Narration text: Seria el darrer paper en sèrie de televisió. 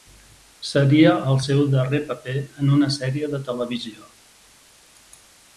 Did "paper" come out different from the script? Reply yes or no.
no